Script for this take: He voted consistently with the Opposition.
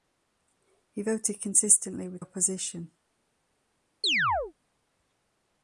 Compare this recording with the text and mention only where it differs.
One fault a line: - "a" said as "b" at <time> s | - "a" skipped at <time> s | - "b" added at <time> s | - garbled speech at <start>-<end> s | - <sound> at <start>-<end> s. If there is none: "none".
- "the" skipped at 2.2 s
- chirp at 4.0-4.5 s